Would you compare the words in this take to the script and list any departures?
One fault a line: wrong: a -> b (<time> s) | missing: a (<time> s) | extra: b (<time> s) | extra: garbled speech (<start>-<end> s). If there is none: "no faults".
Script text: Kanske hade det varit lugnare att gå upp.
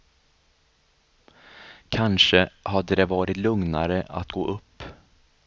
no faults